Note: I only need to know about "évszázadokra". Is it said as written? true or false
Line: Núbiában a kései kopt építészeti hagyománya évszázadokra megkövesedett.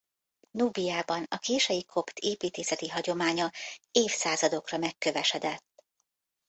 true